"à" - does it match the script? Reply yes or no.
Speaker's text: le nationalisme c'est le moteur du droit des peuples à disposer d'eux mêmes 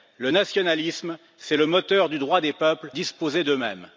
no